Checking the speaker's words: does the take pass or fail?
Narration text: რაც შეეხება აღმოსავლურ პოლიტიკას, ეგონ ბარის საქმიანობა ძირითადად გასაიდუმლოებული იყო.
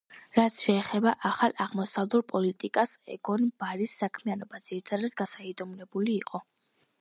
fail